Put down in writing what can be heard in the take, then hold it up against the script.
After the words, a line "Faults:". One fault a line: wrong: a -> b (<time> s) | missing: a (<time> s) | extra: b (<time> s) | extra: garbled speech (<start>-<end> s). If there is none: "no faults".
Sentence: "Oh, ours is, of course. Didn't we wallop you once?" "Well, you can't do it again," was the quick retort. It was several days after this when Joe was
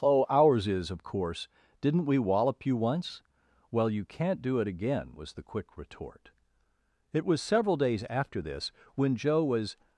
"Oh, ours is, of course. Didn't we wallop you once?" "Well, you can't do it again," was the quick retort. It was several days after this when Joe was
Faults:
no faults